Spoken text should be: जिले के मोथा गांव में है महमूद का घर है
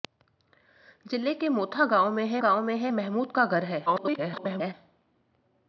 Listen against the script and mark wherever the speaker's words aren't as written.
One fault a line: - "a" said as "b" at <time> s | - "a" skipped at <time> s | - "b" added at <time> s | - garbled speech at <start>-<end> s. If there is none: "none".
- "गांव में है" added at 2.4 s
- garbled speech at 3.9-4.7 s